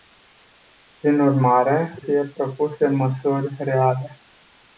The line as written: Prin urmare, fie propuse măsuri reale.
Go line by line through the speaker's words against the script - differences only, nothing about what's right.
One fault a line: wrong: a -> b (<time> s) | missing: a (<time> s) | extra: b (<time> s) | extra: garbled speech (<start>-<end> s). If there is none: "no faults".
no faults